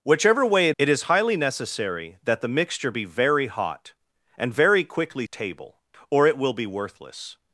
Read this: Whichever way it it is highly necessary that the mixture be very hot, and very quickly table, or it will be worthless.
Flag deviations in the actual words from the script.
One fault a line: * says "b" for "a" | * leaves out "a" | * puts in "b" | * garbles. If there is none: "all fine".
all fine